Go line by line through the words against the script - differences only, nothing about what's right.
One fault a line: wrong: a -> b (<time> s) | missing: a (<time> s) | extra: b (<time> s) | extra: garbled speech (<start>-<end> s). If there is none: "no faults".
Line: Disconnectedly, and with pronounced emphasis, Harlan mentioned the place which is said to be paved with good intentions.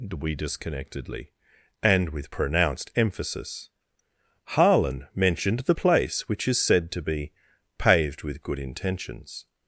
extra: we (0.2 s)